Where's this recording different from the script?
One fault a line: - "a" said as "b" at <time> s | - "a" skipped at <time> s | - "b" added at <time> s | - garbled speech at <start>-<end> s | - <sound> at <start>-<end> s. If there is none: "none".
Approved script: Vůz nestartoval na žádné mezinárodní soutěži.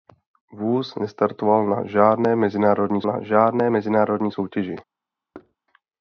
- "na žádné mezinárodní" added at 3.0 s
- thud at 5.3-5.6 s